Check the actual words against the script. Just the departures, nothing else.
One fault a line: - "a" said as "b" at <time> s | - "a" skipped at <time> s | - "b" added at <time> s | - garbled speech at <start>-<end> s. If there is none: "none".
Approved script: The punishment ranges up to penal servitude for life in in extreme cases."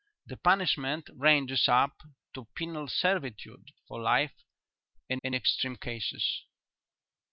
none